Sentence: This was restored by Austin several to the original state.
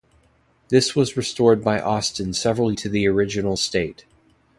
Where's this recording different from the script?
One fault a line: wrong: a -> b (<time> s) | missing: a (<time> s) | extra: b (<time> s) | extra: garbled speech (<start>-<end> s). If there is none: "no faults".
no faults